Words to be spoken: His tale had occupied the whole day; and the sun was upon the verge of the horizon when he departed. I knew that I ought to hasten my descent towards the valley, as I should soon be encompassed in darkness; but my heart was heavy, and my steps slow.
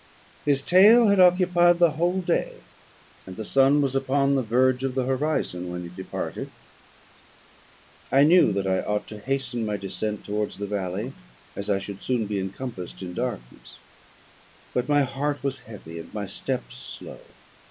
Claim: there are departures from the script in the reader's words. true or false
false